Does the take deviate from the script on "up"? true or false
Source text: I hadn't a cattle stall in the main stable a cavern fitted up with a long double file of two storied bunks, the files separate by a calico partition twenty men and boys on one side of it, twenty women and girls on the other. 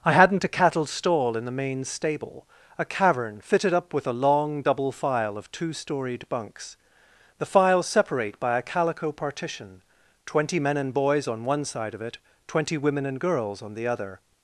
false